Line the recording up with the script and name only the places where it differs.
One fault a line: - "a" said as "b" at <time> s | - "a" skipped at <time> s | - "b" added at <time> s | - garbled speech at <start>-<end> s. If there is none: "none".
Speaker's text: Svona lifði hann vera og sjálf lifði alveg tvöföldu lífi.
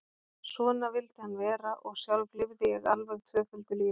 - "lifði" said as "vildi" at 0.9 s
- "ég" added at 2.8 s